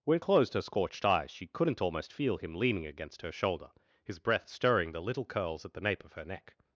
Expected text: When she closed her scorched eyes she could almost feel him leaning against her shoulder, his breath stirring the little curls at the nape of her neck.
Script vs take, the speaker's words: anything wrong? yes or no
yes